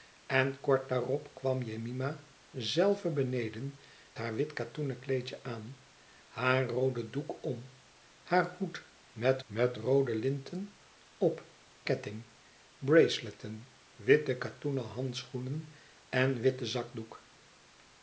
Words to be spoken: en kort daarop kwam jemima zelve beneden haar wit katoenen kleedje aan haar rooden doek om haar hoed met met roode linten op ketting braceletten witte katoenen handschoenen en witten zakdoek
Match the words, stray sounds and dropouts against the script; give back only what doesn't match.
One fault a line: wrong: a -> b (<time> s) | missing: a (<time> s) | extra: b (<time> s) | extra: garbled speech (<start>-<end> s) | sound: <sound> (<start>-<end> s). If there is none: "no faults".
no faults